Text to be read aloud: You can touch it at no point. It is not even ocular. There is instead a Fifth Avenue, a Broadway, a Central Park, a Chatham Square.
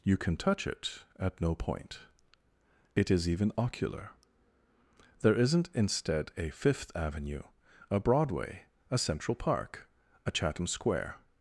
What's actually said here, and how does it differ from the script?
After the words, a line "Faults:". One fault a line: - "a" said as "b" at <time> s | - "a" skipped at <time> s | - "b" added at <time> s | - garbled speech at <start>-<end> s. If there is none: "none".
You can touch it at no point. It is even ocular. There isn't instead a Fifth Avenue, a Broadway, a Central Park, a Chatham Square.
Faults:
- "not" skipped at 3.3 s
- "is" said as "isn't" at 5.3 s